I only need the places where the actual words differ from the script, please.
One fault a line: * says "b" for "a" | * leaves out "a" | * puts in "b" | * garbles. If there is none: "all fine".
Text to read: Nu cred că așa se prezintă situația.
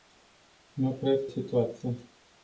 * leaves out "așa se prezintă"